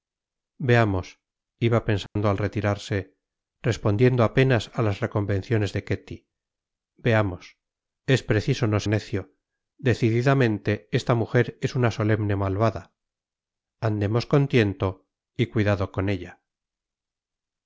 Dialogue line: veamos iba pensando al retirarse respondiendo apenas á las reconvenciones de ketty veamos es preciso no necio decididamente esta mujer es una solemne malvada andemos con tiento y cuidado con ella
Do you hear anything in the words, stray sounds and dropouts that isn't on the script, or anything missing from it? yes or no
yes